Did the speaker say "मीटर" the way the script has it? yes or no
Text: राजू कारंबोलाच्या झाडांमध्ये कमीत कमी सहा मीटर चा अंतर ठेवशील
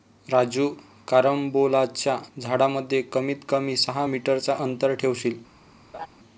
yes